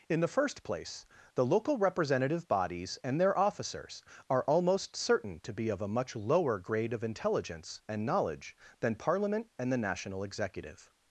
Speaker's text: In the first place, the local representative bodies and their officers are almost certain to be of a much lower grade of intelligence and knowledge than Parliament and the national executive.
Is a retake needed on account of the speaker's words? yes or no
no